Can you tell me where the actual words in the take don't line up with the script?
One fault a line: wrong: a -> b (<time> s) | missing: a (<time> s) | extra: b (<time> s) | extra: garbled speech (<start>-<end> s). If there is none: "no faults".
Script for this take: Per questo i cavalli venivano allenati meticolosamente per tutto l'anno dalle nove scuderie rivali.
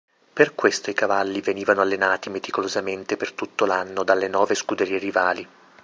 no faults